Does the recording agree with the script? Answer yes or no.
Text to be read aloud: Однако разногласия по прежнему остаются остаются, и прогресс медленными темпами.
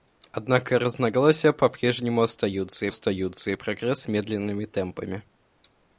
yes